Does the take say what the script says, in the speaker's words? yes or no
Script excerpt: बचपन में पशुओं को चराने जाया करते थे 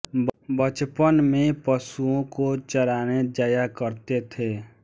yes